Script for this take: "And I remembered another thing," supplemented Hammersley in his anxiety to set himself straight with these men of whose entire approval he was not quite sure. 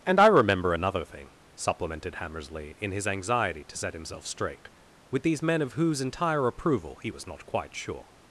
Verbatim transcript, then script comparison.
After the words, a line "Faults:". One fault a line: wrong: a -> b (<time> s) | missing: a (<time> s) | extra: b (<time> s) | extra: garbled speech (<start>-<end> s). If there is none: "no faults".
"And I remember another thing," supplemented Hammersley in his anxiety to set himself straight with these men of whose entire approval he was not quite sure.
Faults:
wrong: remembered -> remember (0.3 s)